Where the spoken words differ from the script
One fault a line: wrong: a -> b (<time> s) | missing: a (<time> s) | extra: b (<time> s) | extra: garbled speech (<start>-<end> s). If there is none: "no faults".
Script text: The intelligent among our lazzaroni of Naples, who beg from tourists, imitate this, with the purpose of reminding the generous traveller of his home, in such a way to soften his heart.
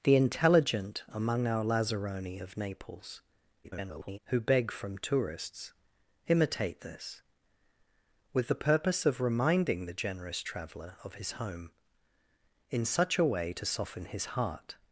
extra: garbled speech (3.6-4.2 s)